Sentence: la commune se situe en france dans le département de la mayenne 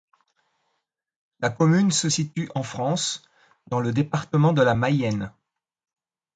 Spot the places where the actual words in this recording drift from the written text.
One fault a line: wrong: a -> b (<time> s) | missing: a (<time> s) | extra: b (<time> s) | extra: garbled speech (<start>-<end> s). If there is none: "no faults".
no faults